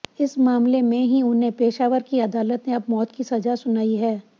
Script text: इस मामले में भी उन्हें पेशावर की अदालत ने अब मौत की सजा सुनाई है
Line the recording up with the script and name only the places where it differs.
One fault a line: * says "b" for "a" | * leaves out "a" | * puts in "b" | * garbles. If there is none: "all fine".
* says "ही" for "भी"